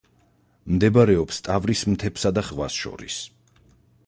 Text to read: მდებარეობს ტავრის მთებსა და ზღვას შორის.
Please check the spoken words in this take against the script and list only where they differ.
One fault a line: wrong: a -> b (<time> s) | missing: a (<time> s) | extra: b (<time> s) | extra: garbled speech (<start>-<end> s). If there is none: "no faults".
no faults